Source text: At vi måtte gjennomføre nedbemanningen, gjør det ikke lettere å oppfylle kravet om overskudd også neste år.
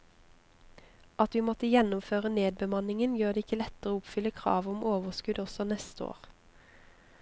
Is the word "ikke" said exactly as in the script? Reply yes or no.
yes